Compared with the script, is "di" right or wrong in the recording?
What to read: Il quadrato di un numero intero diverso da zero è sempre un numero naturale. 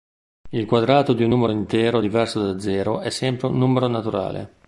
right